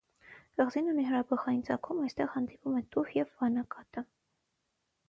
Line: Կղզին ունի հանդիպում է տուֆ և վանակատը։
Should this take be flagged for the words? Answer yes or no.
yes